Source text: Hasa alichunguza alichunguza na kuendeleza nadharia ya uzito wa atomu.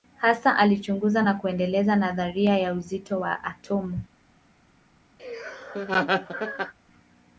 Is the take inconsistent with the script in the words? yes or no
yes